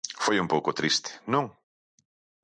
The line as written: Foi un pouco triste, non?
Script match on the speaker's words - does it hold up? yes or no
yes